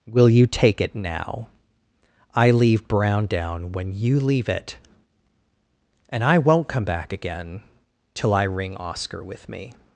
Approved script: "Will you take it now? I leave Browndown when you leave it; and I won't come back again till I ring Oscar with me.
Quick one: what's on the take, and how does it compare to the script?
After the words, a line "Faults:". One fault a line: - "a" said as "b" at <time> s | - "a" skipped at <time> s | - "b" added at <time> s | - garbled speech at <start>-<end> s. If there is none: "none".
"Will you take it now? I leave Browndown when you leave it; and I won't come back again till I ring Oscar with me.
Faults:
none